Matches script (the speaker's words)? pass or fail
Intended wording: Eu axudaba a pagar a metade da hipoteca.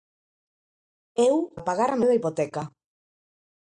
fail